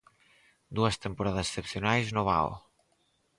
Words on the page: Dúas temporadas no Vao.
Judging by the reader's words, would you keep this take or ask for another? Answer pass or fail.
fail